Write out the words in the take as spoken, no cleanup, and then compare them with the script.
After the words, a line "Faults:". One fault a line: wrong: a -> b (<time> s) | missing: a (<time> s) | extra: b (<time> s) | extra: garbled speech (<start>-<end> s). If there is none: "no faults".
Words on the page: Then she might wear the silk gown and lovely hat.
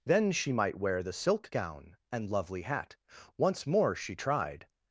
Then she might wear the silk gown and lovely hat. Once more she tried
Faults:
extra: Once more she tried (3.4 s)